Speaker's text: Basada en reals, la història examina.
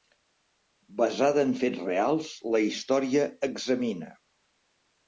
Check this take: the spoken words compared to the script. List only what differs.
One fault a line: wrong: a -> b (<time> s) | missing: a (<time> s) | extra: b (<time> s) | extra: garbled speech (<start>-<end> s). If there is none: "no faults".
extra: fets (1.6 s)